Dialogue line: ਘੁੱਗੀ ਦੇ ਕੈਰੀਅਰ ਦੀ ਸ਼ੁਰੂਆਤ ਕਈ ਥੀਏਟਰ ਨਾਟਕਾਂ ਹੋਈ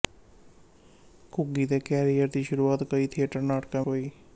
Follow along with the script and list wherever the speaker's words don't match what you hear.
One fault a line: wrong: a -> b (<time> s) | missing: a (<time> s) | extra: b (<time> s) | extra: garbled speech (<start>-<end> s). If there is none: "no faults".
no faults